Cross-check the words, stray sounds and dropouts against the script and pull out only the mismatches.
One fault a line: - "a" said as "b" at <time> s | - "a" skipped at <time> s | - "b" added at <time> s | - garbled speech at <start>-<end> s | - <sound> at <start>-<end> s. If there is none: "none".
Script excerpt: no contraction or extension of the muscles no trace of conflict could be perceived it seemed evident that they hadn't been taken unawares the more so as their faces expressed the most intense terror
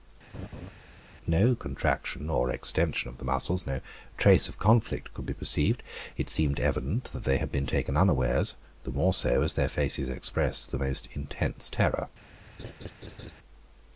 - laugh at 0.3-0.7 s
- "hadn't" said as "had" at 7.4 s
- laugh at 12.6-13.4 s